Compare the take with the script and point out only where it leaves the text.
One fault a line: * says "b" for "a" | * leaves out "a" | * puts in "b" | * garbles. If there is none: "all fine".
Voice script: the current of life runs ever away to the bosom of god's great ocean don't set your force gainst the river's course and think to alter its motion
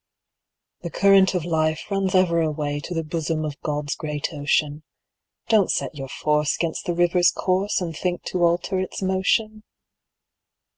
all fine